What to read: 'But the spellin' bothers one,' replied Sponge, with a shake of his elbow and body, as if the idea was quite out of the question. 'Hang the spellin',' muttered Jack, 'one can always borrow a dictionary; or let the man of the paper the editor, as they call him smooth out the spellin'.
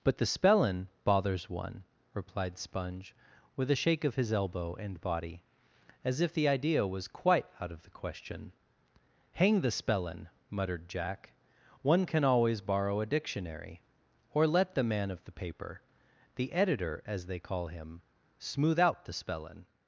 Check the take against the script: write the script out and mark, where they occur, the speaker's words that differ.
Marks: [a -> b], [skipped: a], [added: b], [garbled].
'But the spellin' bothers one,' replied Sponge, with a shake of his elbow and body, as if the idea was quite out of the question. 'Hang the spellin',' muttered Jack, 'one can always borrow a dictionary; or let the man of the paper the editor, as they call him smooth out the spellin'.